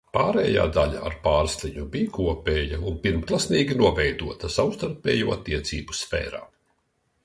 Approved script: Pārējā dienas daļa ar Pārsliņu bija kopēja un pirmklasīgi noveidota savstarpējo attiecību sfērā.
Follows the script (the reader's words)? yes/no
no